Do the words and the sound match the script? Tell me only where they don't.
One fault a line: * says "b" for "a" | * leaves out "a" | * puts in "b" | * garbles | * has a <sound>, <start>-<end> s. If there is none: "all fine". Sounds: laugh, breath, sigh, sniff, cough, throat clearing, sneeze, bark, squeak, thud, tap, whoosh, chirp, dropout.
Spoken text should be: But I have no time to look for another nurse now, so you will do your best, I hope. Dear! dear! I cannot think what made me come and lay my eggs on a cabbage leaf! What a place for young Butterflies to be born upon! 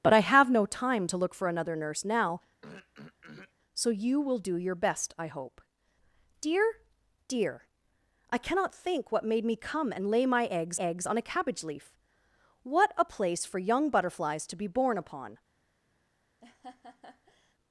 * has a throat clearing, 2.6-3.5 s
* puts in "eggs"
* has a laugh, 16.4-17.5 s